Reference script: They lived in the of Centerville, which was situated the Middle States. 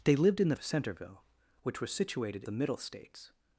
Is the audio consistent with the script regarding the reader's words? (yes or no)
yes